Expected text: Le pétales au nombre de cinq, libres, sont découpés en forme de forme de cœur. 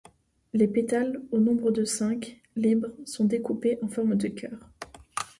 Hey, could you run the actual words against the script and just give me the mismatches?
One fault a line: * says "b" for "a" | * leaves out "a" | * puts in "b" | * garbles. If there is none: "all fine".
* says "Les" for "Le"
* leaves out "forme de"